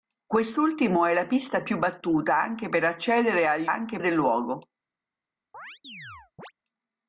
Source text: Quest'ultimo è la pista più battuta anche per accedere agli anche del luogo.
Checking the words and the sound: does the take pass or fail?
fail